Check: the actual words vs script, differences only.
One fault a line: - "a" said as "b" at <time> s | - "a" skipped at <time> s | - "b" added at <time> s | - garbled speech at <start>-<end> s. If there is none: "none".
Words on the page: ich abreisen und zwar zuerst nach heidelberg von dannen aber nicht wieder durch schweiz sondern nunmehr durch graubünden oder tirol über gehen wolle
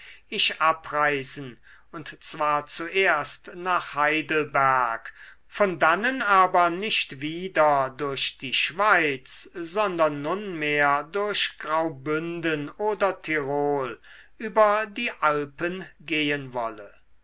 - "die" added at 8.4 s
- "die alpen" added at 14.9 s